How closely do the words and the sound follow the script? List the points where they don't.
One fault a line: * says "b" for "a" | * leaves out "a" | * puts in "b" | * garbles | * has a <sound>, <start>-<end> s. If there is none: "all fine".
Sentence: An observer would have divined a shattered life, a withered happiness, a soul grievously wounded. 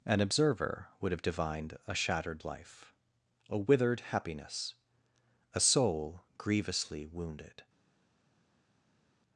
all fine